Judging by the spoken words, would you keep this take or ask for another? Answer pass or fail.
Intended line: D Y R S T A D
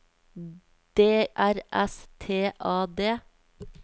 fail